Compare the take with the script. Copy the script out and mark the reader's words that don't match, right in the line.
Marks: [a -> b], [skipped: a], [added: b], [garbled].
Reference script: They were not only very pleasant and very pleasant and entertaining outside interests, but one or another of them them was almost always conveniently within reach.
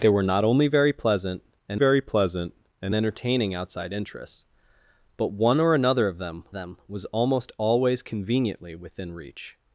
They were not only very pleasant and very pleasant and entertaining outside interests, but one or another of them them was almost always conveniently within reach.